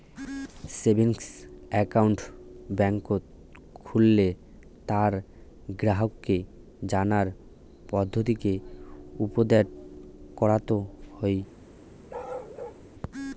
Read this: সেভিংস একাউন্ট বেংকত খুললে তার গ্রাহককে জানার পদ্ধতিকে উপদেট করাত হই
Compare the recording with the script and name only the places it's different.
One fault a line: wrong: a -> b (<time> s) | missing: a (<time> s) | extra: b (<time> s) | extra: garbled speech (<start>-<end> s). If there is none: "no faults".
no faults